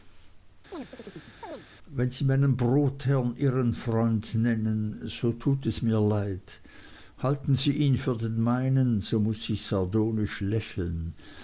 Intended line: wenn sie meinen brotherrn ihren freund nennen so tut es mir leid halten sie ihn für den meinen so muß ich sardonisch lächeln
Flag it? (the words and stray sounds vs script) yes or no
yes